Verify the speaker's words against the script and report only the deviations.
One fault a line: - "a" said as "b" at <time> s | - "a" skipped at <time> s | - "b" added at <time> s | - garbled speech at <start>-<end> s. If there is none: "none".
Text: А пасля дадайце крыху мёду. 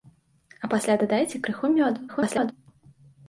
- garbled speech at 2.1-2.5 s